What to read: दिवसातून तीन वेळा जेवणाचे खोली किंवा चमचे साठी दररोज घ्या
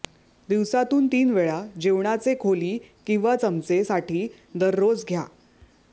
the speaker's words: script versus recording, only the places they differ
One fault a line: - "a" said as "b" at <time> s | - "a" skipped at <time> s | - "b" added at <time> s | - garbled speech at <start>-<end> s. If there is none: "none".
none